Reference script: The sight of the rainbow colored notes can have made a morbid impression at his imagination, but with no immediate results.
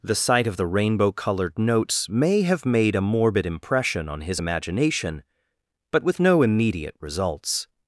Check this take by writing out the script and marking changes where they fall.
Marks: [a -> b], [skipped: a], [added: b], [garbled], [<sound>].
The sight of the rainbow colored notes [can -> may] have made a morbid impression [at -> on] his imagination, but with no immediate results.